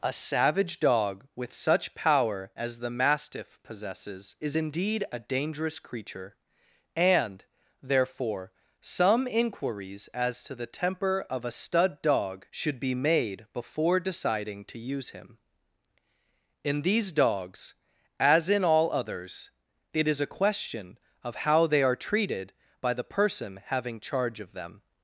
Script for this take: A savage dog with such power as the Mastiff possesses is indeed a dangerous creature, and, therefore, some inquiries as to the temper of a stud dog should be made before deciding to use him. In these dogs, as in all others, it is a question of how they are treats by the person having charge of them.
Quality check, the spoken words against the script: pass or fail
fail